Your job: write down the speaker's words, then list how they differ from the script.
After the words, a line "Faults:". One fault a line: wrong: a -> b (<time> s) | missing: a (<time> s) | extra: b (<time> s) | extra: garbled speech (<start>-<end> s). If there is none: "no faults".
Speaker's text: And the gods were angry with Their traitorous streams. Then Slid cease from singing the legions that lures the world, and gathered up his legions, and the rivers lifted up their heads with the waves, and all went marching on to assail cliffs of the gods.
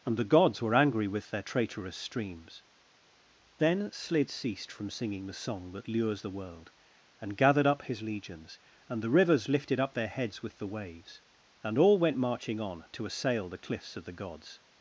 And the gods were angry with Their traitorous streams. Then Slid ceased from singing the song that lures the world, and gathered up his legions, and the rivers lifted up their heads with the waves, and all went marching on to assail the cliffs of the gods.
Faults:
wrong: cease -> ceased (4.3 s)
wrong: legions -> song (5.3 s)
extra: the (13.5 s)